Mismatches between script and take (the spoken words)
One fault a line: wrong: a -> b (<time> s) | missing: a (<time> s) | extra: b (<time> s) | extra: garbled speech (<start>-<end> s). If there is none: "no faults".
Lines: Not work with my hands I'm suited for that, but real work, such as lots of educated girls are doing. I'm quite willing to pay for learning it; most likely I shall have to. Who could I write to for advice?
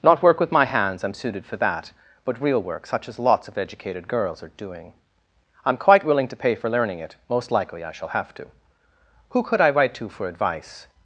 no faults